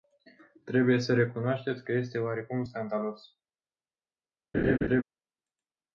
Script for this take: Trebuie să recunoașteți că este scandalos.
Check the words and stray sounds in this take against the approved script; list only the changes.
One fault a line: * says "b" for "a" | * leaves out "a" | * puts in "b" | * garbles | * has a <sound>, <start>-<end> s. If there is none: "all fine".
* puts in "oarecum"
* has a laugh, 4.5-5.0 s